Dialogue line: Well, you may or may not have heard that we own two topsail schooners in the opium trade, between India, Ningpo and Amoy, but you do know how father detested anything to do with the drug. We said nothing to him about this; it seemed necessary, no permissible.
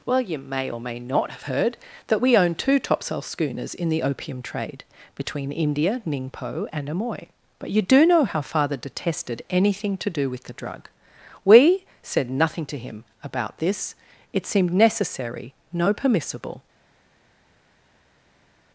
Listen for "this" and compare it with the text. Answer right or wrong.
right